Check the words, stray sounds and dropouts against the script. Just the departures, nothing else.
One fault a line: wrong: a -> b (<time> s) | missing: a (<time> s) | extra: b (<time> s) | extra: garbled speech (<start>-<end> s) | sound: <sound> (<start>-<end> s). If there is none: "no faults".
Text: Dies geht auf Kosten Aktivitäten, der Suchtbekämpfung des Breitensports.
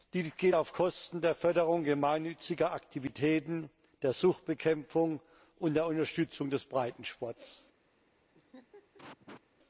extra: der Förderung gemeinnütziger (1.2 s)
extra: und der Unterstützung (5.6 s)
sound: laugh (8.3-9.4 s)